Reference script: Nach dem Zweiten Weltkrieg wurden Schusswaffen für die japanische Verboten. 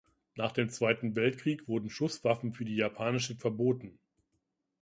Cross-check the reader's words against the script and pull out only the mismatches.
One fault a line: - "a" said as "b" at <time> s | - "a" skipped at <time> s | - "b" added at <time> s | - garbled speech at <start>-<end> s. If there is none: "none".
none